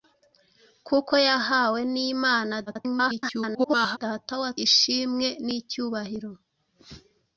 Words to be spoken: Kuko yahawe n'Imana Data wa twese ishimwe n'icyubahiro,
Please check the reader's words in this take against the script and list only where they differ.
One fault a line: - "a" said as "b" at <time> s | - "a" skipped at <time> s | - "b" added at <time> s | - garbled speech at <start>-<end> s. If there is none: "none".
- garbled speech at 2.7-4.0 s
- "twese" skipped at 4.5 s